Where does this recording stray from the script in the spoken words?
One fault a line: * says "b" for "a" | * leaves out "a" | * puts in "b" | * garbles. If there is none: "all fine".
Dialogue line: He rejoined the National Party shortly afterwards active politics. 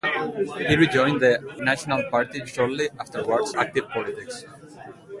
all fine